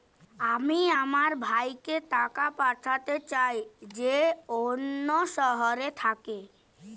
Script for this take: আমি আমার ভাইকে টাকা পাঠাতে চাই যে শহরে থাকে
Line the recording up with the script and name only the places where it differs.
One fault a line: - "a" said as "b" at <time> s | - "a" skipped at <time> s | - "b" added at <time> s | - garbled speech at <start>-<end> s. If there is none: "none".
- "অন্য" added at 4.6 s